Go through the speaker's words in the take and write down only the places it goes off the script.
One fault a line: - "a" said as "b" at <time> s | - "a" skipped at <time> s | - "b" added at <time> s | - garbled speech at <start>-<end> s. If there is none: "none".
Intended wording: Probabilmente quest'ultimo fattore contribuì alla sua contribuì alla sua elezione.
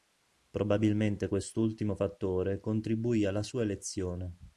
- "contribuì alla sua" skipped at 3.6 s